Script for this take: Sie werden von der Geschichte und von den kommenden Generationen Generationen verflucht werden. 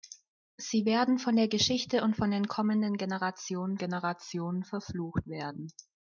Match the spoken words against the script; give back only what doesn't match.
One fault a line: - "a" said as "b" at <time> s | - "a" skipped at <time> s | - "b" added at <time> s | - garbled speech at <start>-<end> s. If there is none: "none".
none